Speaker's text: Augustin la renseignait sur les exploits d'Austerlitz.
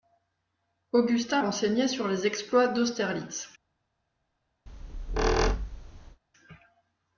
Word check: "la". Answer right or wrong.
wrong